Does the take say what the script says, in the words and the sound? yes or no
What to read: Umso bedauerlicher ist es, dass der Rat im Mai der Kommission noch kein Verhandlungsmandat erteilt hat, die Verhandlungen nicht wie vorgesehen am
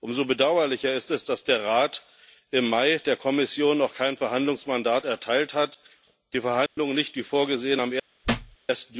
no